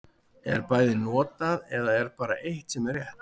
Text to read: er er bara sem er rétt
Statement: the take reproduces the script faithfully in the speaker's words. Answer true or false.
false